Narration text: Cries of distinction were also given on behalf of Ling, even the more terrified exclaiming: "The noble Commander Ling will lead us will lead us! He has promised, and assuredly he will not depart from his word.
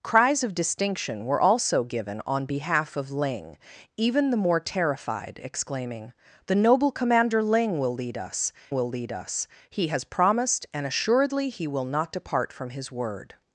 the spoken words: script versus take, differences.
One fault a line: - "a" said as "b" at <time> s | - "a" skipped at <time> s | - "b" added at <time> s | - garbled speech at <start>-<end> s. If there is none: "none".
none